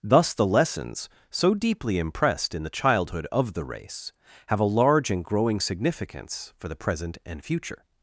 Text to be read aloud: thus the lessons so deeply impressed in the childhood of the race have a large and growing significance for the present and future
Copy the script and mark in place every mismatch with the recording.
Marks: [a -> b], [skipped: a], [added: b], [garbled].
thus the lessons so deeply impressed in the childhood of the race have a large and growing significance for the present and future